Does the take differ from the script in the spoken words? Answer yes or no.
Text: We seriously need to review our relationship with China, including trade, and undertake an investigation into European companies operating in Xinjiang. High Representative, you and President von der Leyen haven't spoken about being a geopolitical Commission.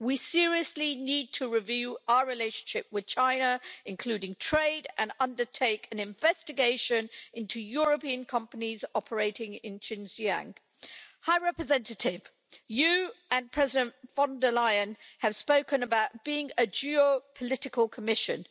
yes